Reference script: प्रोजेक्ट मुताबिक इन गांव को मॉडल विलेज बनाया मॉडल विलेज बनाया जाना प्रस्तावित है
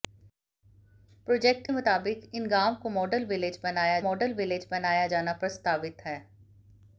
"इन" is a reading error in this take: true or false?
false